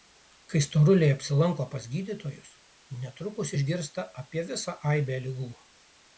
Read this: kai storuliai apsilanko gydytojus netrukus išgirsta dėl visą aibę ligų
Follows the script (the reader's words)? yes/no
no